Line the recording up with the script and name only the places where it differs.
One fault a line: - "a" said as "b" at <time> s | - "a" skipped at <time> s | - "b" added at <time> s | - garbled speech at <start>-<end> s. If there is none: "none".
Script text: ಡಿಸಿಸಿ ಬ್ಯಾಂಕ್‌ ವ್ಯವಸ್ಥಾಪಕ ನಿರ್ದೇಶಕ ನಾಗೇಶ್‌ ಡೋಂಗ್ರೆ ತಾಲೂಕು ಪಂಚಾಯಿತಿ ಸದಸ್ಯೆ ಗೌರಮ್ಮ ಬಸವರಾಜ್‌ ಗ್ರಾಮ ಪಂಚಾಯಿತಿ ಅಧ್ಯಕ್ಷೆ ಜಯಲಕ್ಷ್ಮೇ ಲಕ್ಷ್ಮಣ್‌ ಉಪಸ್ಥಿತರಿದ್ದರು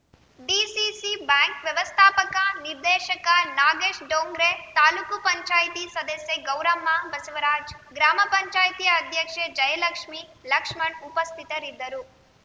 none